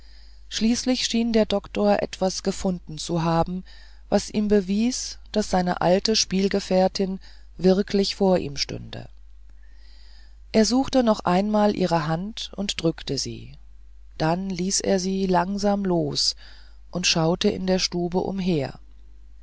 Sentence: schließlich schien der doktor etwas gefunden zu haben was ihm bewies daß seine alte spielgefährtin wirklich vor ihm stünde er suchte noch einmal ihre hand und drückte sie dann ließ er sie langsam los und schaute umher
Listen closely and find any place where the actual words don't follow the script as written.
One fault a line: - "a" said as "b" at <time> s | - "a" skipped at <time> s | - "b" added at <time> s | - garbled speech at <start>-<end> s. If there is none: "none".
- "in der stube" added at 17.5 s